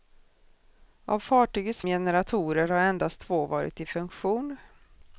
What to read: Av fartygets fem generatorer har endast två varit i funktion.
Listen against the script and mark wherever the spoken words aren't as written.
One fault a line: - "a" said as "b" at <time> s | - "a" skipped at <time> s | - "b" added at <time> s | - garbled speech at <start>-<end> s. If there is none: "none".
- "fem" skipped at 1.8 s